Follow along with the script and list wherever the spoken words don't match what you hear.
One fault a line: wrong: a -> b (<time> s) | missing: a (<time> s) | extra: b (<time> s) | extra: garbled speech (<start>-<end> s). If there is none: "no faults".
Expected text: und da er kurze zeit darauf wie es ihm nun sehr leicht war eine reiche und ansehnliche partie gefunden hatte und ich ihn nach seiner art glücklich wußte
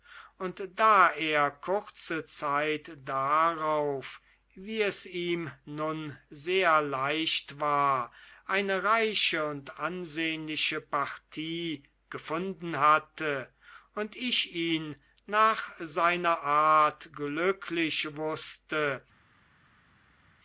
no faults